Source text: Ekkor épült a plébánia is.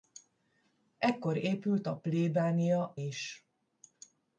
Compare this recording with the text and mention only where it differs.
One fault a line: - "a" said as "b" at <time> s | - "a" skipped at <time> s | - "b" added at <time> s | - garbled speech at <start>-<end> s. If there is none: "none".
none